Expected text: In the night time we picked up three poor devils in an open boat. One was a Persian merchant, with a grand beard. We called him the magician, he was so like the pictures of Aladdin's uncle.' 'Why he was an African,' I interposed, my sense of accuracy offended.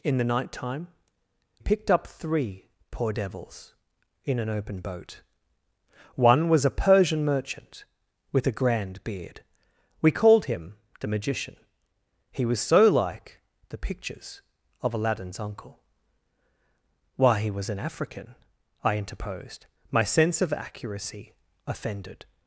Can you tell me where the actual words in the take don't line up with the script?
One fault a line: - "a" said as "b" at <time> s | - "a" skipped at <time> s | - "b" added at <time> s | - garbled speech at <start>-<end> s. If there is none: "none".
- "we" skipped at 0.9 s